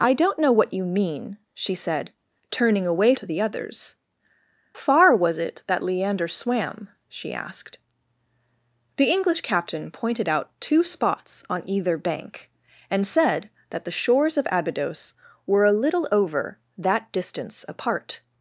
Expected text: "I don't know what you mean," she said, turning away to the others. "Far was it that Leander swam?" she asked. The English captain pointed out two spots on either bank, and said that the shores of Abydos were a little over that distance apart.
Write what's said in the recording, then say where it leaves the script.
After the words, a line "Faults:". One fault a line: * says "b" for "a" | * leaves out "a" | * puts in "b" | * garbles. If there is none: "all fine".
"I don't know what you mean," she said, turning away to the others. "Far was it that Leander swam?" she asked. The English captain pointed out two spots on either bank, and said that the shores of Abydos were a little over that distance apart.
Faults:
all fine